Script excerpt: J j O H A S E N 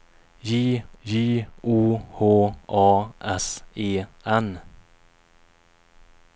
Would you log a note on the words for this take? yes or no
no